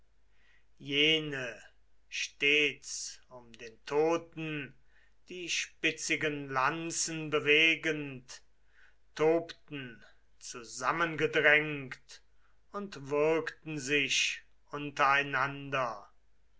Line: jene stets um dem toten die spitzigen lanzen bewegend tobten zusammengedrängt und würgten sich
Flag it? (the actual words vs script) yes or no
yes